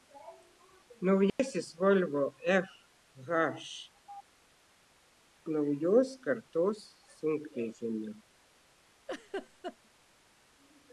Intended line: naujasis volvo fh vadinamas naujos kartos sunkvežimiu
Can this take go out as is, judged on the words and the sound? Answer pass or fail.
fail